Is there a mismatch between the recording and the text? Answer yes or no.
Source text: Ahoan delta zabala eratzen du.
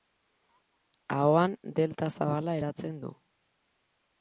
no